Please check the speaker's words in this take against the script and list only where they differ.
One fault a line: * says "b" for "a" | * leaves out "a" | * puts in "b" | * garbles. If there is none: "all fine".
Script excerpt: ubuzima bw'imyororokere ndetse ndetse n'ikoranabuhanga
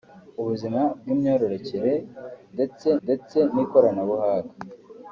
all fine